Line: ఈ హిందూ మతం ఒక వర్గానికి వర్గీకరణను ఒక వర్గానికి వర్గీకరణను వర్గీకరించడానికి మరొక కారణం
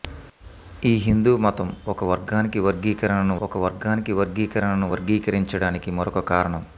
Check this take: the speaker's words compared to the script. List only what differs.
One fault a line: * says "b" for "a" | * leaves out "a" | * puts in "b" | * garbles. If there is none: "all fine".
all fine